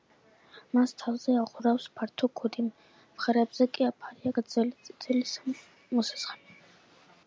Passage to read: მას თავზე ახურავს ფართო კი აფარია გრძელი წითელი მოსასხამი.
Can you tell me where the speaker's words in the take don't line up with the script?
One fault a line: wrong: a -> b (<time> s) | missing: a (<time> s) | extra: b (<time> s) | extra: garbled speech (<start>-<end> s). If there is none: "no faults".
extra: ქუდი მხრებზე (2.4 s)